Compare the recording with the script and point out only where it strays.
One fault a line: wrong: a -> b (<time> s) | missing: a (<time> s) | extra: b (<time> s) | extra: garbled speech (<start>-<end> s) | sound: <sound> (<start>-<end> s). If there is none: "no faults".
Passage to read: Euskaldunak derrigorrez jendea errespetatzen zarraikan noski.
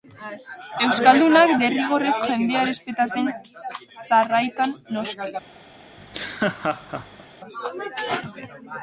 sound: laugh (6.0-7.3 s)